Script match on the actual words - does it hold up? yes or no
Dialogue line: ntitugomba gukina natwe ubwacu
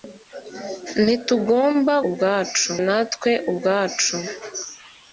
no